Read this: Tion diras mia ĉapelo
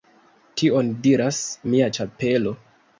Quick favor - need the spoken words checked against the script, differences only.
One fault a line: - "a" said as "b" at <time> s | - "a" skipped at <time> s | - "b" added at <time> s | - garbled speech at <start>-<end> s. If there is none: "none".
none